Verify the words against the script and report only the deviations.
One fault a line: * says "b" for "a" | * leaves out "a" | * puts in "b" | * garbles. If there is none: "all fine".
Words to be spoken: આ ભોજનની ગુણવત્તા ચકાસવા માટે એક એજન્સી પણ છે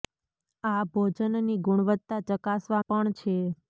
* leaves out "માટે એક એજન્સી"